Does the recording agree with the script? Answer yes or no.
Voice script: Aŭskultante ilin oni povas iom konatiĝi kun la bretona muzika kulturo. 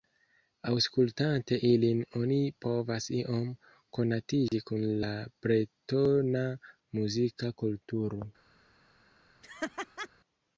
yes